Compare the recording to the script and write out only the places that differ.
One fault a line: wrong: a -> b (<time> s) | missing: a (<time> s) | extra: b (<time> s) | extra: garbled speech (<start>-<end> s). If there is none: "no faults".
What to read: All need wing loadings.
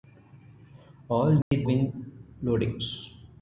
no faults